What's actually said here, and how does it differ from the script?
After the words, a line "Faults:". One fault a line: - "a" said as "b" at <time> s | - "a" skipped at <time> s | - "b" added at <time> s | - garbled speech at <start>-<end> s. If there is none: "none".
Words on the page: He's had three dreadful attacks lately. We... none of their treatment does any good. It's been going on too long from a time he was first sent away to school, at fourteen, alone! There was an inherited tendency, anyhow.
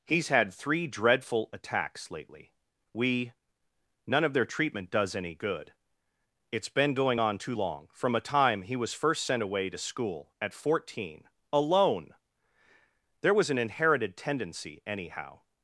He's had three dreadful attacks lately. We... none of their treatment does any good. It's been going on too long from a time he was first sent away to school, at fourteen, alone! There was an inherited tendency, anyhow.
Faults:
none